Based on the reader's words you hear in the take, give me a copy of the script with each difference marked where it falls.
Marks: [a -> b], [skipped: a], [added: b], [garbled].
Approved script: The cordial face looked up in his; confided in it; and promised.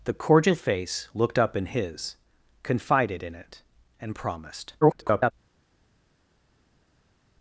The cordial face looked up in his; confided in it; and promised. [garbled]